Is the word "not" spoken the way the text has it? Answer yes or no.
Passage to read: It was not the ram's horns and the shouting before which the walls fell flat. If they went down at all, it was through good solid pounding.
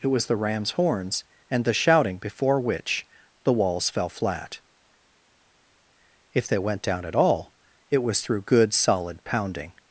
no